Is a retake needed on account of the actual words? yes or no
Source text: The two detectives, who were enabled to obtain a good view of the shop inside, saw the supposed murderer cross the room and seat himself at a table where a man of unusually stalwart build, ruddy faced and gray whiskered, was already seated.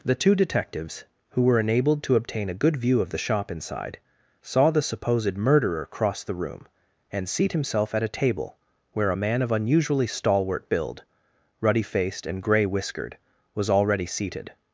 no